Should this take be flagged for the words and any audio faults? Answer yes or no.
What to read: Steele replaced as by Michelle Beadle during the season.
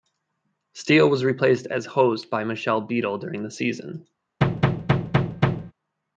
yes